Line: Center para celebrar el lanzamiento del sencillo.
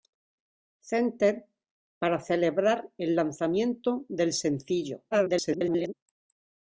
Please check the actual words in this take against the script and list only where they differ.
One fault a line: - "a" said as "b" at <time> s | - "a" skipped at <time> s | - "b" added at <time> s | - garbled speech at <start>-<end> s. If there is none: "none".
- garbled speech at 5.1-5.9 s